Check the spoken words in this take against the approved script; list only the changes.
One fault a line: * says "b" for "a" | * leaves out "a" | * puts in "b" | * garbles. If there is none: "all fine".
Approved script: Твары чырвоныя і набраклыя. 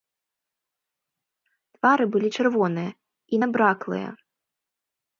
* puts in "былі"